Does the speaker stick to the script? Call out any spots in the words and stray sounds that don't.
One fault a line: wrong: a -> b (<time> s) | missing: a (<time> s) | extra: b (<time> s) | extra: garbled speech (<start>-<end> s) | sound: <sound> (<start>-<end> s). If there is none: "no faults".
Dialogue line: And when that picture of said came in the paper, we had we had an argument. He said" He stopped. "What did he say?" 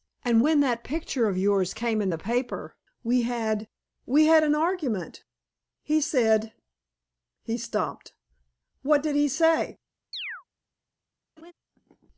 wrong: said -> yours (1.4 s)
sound: chirp (10.1-10.4 s)
sound: laugh (11.4-11.5 s)